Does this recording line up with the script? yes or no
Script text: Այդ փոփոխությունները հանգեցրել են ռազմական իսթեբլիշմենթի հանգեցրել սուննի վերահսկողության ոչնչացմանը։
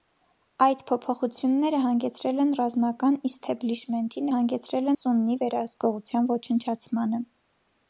yes